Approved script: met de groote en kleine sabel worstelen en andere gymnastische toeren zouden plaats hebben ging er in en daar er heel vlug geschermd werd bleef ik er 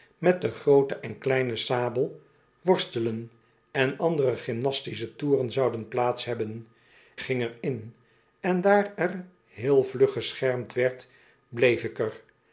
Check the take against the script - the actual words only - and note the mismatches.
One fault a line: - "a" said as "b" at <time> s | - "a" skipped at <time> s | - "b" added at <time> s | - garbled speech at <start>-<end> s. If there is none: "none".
none